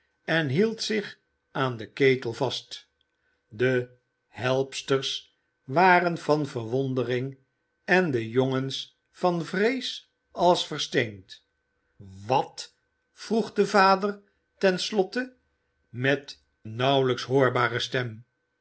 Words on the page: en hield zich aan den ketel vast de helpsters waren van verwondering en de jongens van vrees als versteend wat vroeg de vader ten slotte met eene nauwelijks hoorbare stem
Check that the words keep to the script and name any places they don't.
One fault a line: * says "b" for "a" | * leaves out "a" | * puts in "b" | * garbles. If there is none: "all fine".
* leaves out "eene"